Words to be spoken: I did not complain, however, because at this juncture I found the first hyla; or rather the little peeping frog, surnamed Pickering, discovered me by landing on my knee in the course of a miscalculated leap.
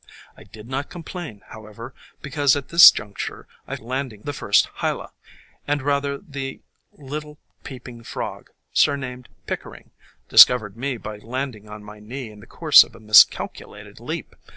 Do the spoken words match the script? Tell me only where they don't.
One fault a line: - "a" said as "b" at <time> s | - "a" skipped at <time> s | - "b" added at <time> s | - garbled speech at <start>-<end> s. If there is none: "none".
- "found" said as "landing" at 3.7 s